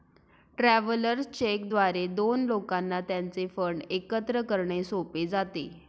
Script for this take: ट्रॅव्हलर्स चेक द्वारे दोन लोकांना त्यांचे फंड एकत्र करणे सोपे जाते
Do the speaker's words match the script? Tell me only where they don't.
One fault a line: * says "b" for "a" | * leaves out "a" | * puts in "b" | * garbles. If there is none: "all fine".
all fine